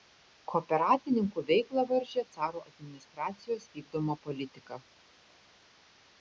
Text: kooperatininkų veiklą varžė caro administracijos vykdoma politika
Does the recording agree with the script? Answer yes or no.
yes